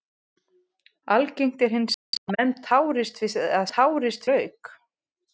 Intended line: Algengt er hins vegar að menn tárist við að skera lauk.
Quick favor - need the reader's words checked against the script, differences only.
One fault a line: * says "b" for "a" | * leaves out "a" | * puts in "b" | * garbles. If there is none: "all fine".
* says "tárist" for "skera"